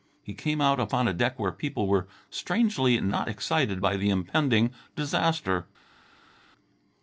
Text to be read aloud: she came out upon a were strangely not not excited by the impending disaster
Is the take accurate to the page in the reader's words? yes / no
no